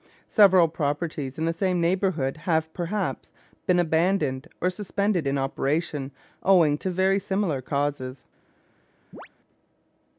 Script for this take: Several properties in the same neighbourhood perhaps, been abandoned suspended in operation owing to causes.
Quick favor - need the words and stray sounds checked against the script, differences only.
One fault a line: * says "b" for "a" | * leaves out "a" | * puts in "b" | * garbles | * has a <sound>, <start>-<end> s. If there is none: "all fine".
* puts in "have"
* puts in "or"
* puts in "very similar"
* has a chirp, 9.1-9.3 s